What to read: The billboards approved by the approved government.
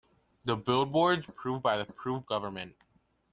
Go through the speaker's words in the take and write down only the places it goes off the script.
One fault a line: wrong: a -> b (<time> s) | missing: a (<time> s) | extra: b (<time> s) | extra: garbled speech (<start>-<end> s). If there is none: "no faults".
no faults